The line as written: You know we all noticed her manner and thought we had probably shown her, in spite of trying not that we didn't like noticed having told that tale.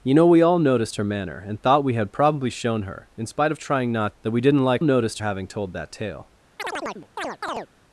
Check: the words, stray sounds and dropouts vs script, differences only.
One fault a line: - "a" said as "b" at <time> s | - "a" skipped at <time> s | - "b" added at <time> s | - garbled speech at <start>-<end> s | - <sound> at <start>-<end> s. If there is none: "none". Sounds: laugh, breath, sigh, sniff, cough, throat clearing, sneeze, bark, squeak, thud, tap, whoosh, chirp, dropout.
- chirp at 6.6-7.7 s